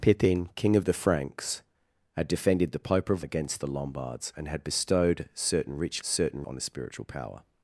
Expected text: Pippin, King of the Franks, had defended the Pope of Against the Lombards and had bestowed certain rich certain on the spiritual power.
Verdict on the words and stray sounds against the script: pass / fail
pass